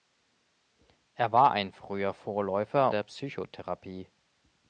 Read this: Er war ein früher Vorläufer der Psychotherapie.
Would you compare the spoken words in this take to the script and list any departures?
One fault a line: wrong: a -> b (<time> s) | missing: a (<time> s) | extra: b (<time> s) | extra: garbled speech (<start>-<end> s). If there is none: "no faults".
no faults